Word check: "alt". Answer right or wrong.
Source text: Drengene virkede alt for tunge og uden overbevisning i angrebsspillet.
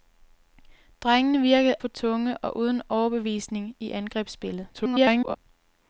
wrong